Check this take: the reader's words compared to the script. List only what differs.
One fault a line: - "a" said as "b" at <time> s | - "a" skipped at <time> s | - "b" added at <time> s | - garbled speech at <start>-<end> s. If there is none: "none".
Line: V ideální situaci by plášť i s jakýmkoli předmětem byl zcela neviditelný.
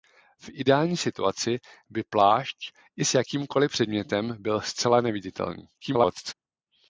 - garbled speech at 5.7-6.3 s